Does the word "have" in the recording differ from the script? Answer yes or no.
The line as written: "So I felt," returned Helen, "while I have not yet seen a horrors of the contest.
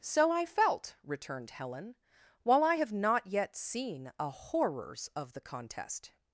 no